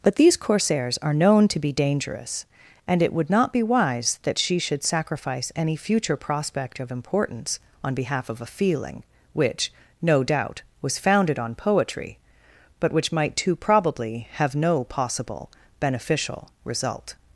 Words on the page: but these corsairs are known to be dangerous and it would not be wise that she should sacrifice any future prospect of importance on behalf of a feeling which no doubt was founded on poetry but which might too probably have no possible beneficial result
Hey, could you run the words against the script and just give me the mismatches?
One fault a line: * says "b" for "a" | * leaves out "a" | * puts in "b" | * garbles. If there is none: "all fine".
all fine